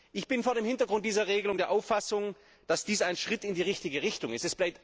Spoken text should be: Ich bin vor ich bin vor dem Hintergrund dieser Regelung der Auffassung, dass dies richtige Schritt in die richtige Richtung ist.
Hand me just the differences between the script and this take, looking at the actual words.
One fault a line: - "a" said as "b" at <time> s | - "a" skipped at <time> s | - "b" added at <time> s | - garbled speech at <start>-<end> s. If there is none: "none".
- "ich bin vor" skipped at 0.6 s
- "richtige" said as "ein" at 3.0 s